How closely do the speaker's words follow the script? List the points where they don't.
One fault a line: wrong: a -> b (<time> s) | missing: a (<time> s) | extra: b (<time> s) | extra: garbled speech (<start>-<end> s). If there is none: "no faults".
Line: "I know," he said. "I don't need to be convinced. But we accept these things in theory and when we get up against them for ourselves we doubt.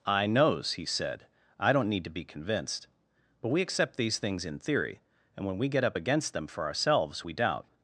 wrong: know -> knows (0.2 s)